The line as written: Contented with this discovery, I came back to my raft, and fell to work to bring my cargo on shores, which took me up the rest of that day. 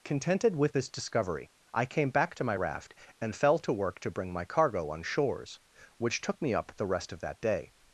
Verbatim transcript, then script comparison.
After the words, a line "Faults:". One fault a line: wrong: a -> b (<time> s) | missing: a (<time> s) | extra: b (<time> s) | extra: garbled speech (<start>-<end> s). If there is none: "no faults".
Contented with this discovery, I came back to my raft, and fell to work to bring my cargo on shores, which took me up the rest of that day.
Faults:
no faults